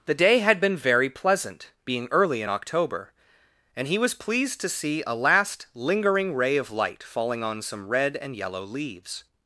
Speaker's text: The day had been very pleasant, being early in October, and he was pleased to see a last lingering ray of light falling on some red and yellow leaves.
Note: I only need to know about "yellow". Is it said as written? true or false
true